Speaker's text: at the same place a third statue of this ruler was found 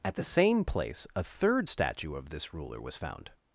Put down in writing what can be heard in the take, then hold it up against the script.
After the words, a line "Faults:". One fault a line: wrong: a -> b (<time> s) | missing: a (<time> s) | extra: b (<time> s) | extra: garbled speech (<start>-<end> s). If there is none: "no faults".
at the same place a third statue of this ruler was found
Faults:
no faults